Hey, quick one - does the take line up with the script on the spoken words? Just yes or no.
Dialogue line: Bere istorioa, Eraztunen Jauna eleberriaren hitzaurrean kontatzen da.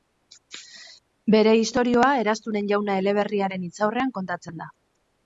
yes